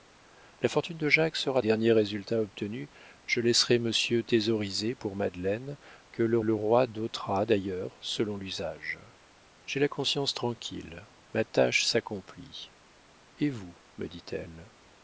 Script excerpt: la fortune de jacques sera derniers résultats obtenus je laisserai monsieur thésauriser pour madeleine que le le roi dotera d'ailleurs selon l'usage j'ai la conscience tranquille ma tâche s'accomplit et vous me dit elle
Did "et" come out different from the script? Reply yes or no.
no